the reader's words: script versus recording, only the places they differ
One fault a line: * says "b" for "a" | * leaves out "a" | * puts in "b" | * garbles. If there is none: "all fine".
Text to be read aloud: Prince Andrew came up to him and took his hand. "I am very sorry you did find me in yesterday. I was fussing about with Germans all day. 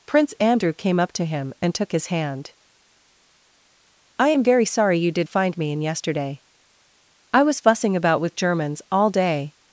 all fine